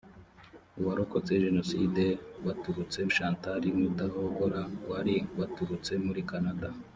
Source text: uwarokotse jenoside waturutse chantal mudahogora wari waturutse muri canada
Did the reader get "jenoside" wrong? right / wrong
right